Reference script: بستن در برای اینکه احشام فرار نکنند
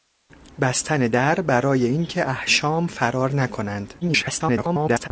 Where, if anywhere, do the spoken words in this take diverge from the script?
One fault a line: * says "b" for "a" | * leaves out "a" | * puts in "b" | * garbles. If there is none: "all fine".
* garbles